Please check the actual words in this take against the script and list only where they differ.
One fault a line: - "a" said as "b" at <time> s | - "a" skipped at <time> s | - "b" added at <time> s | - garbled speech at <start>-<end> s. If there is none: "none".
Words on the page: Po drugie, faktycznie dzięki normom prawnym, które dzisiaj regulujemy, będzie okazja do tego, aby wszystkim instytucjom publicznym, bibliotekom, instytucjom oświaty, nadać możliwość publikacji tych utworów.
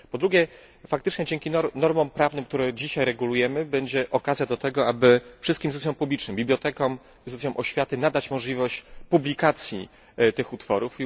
none